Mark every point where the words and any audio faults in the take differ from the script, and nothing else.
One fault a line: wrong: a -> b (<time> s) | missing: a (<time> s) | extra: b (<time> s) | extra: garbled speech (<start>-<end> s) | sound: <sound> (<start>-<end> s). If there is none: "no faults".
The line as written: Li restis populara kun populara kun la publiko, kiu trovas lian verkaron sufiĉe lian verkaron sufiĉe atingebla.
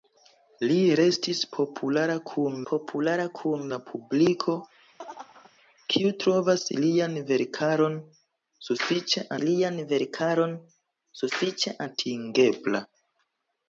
sound: laugh (5.0-5.5 s)